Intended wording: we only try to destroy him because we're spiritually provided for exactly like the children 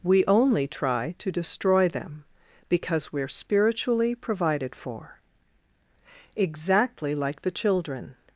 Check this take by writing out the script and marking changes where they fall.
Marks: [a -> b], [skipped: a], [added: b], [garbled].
we only try to destroy [him -> them] because we're spiritually provided for exactly like the children